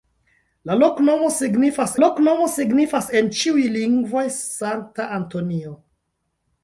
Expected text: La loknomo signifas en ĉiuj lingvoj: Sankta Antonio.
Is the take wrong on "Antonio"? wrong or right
right